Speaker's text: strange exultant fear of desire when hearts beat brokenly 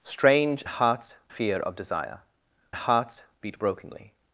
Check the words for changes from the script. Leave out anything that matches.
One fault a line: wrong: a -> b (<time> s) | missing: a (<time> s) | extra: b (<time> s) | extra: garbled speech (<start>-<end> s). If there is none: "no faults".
wrong: exultant -> hearts (0.7 s)
missing: when (2.2 s)